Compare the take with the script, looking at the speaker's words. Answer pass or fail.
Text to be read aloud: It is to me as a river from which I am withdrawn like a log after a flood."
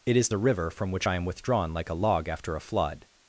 fail